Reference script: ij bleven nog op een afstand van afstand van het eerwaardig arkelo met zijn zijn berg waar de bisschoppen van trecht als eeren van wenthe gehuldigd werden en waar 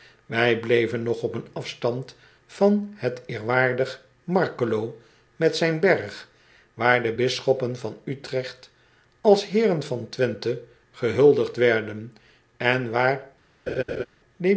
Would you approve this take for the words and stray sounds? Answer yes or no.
no